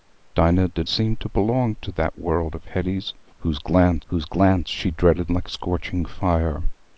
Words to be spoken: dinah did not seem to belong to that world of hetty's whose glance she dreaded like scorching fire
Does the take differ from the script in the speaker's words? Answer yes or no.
yes